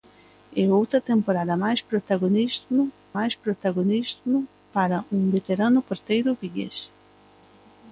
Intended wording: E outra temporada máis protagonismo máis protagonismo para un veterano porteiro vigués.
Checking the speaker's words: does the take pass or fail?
pass